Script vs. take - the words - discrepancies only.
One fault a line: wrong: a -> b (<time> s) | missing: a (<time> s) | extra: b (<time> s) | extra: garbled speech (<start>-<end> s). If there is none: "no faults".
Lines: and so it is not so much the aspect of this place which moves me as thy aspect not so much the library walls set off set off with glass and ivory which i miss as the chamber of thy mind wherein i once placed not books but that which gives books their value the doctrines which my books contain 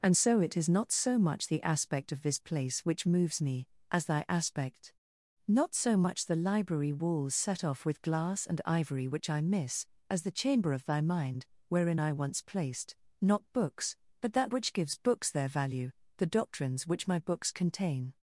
missing: set off (7.8 s)